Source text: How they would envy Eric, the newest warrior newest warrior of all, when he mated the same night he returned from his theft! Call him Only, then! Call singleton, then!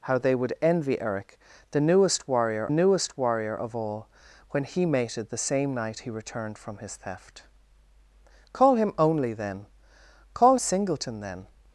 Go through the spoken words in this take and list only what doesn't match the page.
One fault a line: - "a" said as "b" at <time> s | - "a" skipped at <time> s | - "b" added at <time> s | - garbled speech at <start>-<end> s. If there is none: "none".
none